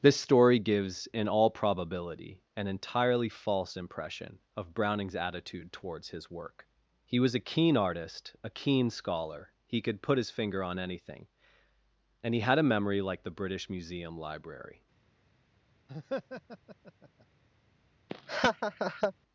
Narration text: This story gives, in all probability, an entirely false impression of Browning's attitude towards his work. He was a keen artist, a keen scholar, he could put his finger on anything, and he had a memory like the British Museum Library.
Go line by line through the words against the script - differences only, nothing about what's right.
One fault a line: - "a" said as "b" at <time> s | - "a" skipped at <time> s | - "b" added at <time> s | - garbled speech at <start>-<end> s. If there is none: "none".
none